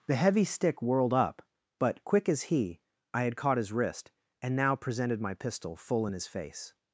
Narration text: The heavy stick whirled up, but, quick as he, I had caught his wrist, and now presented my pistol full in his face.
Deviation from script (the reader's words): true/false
false